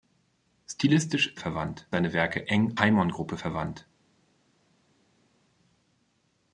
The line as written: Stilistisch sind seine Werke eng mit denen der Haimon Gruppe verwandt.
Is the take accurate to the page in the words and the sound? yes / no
no